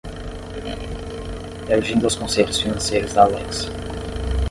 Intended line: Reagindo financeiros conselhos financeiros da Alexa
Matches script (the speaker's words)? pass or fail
fail